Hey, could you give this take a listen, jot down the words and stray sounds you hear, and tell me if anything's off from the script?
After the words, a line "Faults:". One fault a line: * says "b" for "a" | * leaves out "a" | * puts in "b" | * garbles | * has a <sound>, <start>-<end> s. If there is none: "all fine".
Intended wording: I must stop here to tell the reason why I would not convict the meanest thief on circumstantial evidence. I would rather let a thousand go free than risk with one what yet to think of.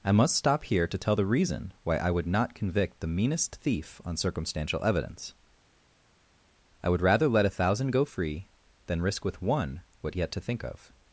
I must stop here to tell the reason why I would not convict the meanest thief on circumstantial evidence. I would rather let a thousand go free than risk with one what yet to think of.
Faults:
all fine